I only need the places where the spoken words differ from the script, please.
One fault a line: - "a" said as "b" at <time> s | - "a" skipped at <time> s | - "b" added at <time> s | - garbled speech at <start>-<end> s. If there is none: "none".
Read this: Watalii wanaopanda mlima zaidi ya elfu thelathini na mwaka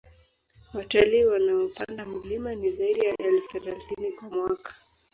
- "ni" added at 2.5 s
- "na" said as "kwa" at 4.1 s